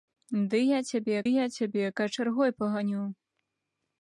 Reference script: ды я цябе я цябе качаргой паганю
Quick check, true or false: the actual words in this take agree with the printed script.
true